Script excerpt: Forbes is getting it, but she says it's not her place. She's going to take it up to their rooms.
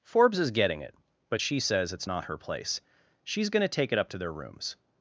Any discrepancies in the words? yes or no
no